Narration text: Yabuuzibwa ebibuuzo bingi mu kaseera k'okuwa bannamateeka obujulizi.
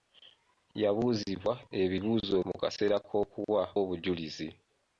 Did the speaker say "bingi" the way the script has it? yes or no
no